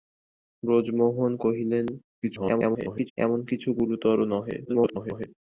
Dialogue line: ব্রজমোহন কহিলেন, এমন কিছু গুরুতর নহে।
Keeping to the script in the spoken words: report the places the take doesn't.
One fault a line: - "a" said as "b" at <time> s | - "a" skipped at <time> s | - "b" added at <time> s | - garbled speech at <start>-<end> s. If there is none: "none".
- garbled speech at 2.2-3.1 s
- garbled speech at 4.7-5.3 s